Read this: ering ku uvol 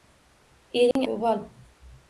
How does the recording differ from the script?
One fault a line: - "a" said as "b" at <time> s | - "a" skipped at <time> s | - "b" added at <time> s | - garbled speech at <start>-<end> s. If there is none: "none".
none